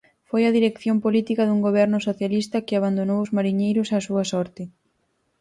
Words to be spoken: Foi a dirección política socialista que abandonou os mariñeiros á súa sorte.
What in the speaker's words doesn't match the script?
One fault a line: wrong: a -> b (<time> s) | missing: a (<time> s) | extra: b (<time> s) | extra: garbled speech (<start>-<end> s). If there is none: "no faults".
extra: dun goberno (1.4 s)